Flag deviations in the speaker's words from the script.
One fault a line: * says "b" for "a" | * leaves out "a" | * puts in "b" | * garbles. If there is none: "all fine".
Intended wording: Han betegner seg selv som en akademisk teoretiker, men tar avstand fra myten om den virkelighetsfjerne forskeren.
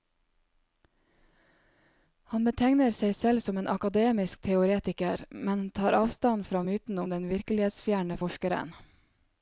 all fine